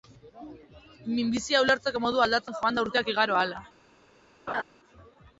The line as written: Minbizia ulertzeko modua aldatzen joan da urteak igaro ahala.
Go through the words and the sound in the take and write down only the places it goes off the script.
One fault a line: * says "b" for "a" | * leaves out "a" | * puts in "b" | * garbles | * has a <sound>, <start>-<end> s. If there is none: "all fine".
* has a laugh, 4.5-4.6 s